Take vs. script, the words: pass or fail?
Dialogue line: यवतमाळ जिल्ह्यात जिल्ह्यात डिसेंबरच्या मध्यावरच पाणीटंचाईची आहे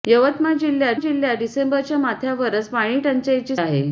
pass